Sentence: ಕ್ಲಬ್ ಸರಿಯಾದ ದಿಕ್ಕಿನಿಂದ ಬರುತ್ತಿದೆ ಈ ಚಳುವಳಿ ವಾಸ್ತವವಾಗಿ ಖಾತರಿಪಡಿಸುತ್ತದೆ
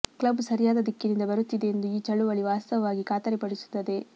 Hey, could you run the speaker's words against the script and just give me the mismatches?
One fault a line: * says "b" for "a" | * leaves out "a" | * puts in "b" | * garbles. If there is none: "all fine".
* puts in "ಎಂದು"